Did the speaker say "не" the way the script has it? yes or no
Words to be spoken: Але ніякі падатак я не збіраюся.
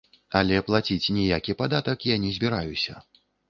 yes